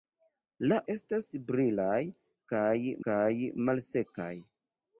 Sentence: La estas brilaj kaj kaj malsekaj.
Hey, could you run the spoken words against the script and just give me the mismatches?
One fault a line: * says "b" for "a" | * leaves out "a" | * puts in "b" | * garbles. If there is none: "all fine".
all fine